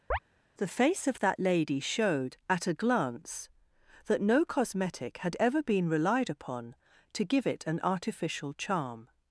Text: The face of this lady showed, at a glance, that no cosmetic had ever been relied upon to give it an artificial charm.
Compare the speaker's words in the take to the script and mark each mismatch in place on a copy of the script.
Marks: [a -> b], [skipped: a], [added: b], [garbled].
The face of [this -> that] lady showed, at a glance, that no cosmetic had ever been relied upon to give it an artificial charm.